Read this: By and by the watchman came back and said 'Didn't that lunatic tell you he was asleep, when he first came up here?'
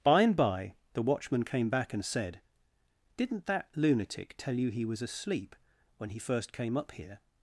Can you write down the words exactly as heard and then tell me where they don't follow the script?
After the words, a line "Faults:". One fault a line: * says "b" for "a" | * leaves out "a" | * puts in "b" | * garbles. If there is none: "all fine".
By and by the watchman came back and said 'Didn't that lunatic tell you he was asleep, when he first came up here?'
Faults:
all fine